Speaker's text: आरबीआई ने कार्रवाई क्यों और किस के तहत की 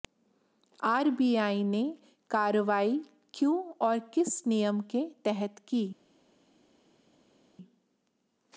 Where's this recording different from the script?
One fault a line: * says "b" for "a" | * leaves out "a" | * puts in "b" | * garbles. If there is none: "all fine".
* puts in "नियम"